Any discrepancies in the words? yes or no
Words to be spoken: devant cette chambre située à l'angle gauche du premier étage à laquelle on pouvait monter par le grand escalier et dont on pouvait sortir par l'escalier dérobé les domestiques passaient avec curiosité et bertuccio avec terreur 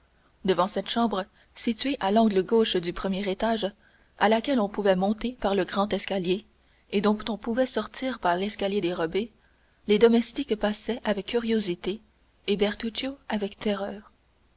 no